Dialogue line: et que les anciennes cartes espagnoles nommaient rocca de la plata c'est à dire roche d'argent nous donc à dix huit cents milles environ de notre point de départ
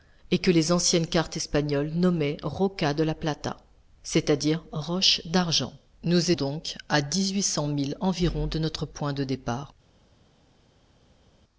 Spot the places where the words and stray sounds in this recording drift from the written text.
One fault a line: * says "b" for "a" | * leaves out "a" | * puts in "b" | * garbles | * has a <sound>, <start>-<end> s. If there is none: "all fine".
all fine